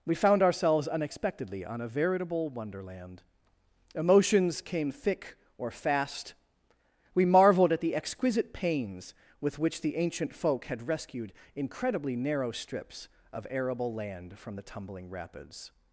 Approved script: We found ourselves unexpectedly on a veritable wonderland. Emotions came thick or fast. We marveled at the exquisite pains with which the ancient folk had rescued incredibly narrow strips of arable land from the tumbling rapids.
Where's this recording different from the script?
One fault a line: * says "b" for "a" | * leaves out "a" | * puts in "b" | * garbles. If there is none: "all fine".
all fine